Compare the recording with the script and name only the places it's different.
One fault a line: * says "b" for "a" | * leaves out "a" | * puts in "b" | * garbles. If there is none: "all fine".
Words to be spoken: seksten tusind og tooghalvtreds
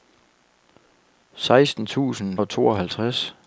all fine